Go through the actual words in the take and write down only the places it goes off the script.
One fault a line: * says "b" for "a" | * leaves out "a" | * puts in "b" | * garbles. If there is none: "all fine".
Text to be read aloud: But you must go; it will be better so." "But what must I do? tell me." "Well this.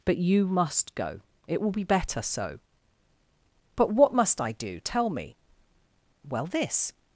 all fine